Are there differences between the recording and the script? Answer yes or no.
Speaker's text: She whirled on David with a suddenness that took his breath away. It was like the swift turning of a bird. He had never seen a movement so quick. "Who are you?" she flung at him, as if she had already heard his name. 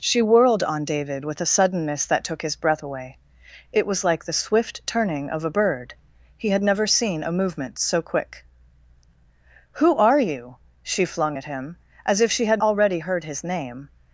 no